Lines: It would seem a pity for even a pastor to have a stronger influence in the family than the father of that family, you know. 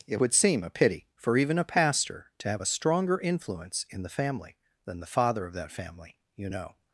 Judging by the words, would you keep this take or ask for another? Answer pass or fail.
pass